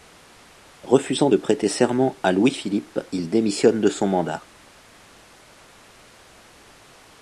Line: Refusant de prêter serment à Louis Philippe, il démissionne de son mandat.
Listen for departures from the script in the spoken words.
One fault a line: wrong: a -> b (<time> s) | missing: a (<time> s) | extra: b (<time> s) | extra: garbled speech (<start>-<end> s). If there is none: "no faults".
no faults